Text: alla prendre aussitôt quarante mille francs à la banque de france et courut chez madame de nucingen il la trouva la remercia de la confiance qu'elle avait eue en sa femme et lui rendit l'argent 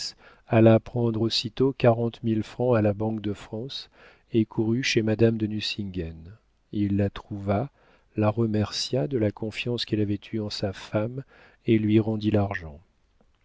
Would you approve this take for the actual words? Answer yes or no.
yes